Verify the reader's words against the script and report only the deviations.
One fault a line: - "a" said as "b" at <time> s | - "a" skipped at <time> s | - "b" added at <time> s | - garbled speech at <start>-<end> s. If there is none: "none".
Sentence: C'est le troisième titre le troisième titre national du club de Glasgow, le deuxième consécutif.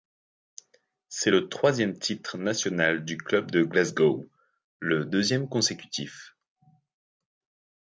- "le troisième titre" skipped at 2.4 s